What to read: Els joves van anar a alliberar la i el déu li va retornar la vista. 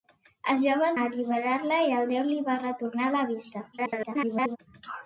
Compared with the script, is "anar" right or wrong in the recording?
wrong